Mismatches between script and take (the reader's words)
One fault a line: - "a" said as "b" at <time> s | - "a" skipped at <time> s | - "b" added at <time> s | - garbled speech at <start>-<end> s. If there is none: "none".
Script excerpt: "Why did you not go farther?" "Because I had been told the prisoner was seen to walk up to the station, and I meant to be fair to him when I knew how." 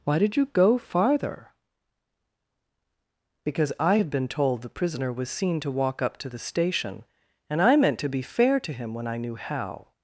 - "not" skipped at 0.5 s